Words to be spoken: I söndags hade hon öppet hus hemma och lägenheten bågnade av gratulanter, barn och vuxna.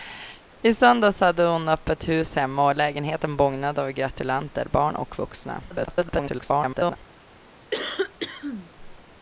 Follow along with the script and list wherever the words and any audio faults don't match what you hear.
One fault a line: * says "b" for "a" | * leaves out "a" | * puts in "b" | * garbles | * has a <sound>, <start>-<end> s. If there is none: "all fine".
* garbles
* has a cough, 7.7-8.7 s